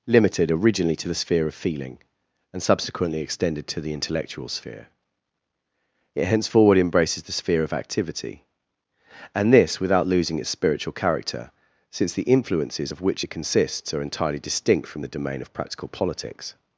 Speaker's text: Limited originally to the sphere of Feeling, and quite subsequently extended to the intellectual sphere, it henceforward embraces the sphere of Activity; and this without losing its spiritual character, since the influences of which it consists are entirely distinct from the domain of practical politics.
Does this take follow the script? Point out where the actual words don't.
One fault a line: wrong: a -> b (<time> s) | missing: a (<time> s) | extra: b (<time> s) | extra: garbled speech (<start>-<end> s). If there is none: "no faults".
missing: quite (2.6 s)